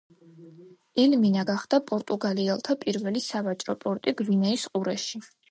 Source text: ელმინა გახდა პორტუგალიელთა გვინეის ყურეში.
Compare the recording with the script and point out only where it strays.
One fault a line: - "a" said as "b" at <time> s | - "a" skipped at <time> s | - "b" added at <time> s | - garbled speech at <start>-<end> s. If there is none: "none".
- "პირველი სავაჭრო პორტი" added at 2.9 s